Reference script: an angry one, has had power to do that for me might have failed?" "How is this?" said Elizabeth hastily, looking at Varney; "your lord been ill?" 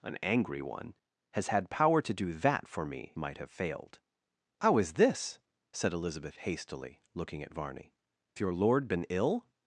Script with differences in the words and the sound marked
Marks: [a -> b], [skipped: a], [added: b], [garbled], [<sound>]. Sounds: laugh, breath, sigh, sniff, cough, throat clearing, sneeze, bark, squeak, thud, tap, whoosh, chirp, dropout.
an angry one, has had power to do that for me might have failed?" "How is this?" said Elizabeth hastily, looking at Varney; "your lord been ill?"